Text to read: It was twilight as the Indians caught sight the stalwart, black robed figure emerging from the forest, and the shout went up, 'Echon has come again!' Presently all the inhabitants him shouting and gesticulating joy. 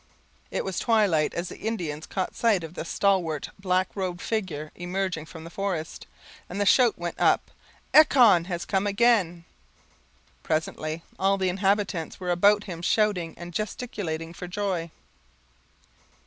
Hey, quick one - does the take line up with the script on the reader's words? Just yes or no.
no